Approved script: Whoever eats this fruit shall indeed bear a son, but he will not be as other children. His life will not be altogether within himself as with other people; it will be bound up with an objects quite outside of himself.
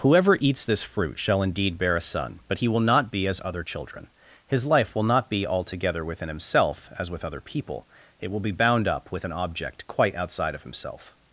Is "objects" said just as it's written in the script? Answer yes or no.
no